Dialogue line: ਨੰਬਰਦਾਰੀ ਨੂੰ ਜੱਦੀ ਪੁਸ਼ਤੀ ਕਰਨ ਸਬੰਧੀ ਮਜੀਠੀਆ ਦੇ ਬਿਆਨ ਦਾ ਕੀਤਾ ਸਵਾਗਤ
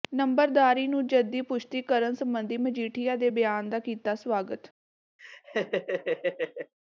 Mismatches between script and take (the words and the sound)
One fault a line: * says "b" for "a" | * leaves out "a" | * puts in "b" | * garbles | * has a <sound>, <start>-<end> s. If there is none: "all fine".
* has a laugh, 5.2-6.7 s